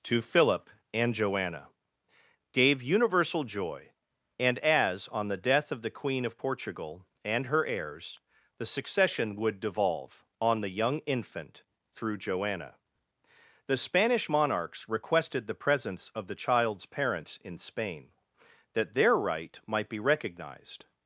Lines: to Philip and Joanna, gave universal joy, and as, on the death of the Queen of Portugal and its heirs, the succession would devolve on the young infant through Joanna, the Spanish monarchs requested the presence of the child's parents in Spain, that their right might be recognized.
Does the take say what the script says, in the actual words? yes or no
no